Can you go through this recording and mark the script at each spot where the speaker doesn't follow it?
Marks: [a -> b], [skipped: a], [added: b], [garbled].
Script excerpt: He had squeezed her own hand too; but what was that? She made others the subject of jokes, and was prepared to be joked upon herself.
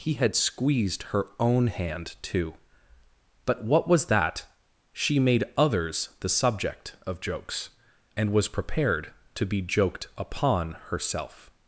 He had squeezed her own hand too; but what was that? She made others the subject of jokes, and was prepared to be joked upon herself.